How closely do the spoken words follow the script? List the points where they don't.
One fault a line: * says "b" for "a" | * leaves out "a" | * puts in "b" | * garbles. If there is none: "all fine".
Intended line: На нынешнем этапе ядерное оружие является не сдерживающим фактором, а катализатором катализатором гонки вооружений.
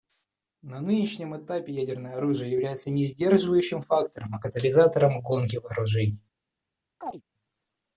* leaves out "катализатором"